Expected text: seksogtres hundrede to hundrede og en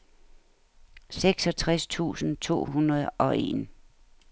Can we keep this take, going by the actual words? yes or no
no